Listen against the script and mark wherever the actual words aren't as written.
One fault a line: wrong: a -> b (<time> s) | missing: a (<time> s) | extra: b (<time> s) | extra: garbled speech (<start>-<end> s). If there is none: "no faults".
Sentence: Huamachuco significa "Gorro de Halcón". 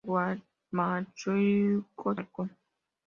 missing: significa Gorro de (2.2 s)